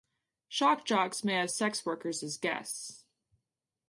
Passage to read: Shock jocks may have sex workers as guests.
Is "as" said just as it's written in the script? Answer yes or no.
yes